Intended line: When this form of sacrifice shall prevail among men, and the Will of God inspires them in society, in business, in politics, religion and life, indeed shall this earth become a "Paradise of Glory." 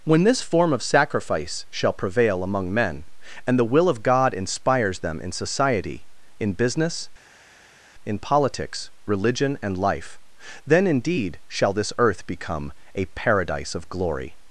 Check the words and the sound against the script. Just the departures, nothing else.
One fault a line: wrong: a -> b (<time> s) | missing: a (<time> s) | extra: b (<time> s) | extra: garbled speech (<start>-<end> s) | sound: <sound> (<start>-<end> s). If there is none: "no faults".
extra: then (10.7 s)